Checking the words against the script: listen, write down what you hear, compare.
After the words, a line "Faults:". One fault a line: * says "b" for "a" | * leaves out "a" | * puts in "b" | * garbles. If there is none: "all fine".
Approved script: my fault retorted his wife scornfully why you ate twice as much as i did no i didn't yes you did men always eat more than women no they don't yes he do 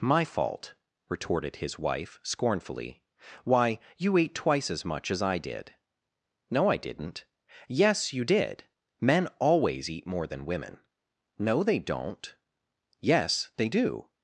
my fault retorted his wife scornfully why you ate twice as much as i did no i didn't yes you did men always eat more than women no they don't yes they do
Faults:
* says "they" for "he"